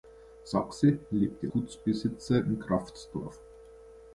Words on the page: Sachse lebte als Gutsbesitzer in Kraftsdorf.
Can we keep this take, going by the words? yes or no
no